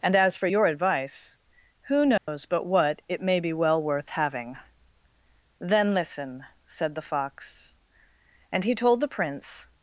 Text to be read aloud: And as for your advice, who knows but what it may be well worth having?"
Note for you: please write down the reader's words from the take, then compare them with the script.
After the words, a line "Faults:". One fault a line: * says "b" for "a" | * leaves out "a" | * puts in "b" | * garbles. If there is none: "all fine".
And as for your advice, who knows but what it may be well worth having?" "Then listen," said the fox; and he told the Prince
Faults:
* puts in "Then listen said the fox and he told the Prince"